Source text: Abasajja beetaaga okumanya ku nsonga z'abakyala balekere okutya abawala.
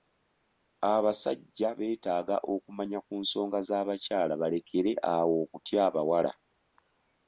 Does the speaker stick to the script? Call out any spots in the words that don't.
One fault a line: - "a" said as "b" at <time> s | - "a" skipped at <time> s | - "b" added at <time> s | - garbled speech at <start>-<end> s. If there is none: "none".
- "awo" added at 5.1 s